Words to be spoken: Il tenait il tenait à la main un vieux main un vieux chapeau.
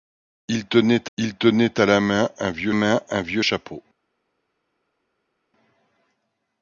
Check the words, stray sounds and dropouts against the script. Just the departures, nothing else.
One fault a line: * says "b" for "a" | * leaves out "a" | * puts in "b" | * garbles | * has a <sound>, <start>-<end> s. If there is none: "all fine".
all fine